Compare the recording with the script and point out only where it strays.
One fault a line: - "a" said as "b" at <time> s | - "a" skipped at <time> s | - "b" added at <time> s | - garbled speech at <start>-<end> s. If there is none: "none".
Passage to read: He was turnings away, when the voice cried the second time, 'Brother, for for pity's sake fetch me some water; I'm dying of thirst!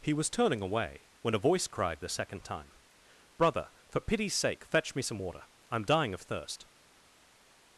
- "turnings" said as "turning" at 0.3 s
- "the" said as "a" at 1.4 s
- "for" skipped at 4.0 s